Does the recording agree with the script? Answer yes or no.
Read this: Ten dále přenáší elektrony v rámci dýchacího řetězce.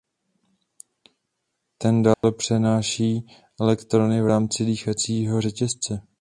yes